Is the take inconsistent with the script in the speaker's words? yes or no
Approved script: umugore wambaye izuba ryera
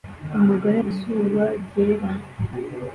yes